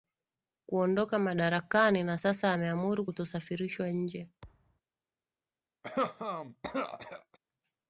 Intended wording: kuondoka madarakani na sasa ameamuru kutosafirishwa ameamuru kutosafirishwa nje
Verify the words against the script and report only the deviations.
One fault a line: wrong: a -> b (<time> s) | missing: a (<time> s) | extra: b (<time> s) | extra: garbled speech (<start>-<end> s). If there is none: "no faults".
missing: ameamuru kutosafirishwa (3.9 s)